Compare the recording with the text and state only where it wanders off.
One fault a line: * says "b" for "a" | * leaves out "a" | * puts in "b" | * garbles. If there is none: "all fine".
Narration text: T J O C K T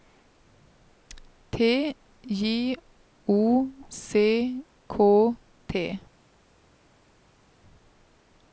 all fine